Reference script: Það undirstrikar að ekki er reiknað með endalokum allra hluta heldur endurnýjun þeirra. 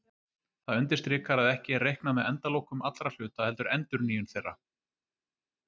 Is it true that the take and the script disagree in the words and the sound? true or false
false